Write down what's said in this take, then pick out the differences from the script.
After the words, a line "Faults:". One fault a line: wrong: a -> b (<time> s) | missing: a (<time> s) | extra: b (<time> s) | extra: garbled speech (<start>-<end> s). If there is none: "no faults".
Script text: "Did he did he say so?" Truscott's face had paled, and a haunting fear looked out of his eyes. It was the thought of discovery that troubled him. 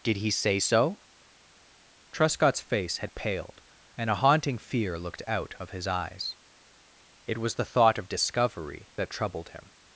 "Did he say so?" Truscott's face had paled, and a haunting fear looked out of his eyes. It was the thought of discovery that troubled him.
Faults:
missing: did he (0.3 s)